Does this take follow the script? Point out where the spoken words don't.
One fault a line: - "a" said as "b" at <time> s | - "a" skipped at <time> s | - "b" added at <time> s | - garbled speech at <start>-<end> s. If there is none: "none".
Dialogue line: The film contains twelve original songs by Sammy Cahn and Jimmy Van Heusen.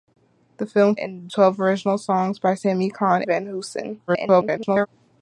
- "contains" said as "and" at 0.9 s
- "and Jimmy" skipped at 3.2 s
- garbled speech at 4.1-4.9 s